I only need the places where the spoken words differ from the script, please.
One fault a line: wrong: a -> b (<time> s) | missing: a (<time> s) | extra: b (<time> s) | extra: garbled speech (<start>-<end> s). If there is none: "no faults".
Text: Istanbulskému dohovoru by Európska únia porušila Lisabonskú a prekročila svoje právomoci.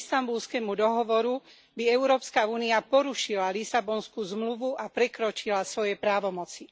extra: zmluvu (4.2 s)